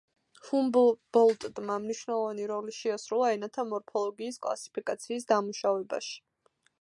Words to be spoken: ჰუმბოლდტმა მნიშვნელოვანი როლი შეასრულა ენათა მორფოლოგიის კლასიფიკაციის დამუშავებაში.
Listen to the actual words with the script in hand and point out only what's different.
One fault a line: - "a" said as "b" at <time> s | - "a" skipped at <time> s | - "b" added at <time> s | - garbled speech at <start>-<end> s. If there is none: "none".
none